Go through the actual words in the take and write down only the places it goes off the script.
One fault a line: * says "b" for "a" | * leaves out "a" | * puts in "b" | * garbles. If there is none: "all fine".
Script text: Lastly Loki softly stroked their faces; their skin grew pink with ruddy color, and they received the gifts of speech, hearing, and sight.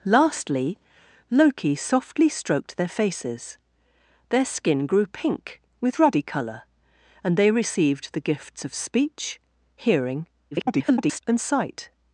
* garbles